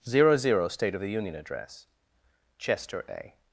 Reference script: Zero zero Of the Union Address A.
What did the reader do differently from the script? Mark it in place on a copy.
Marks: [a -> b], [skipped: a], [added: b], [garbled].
Zero zero [added: State] Of the Union Address [added: Chester] A.